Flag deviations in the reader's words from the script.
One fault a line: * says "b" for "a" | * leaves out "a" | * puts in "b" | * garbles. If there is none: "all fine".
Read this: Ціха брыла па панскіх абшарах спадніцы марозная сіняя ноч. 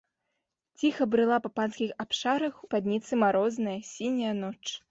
all fine